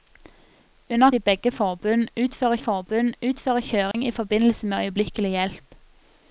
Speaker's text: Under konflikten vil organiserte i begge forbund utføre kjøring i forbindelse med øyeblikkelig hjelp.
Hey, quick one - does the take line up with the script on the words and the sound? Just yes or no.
no